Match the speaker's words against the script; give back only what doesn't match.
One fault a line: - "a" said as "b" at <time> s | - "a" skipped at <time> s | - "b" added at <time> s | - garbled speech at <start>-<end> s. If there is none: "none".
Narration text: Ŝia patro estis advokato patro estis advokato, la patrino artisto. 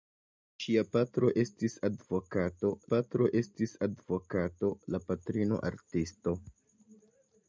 none